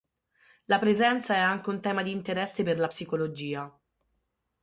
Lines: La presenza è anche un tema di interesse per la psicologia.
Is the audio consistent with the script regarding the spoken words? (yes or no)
yes